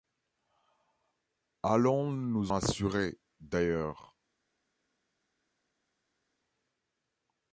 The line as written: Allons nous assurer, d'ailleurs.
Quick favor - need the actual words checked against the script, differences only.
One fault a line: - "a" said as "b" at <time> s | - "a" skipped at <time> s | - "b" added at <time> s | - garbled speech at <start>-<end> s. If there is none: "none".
none